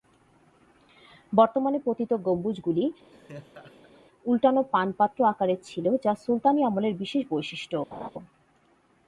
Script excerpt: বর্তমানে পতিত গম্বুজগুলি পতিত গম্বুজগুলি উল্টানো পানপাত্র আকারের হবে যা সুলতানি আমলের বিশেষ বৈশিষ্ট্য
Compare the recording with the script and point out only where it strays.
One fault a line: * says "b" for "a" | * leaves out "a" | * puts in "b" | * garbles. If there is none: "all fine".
* leaves out "পতিত গম্বুজগুলি"
* says "ছিল" for "হবে"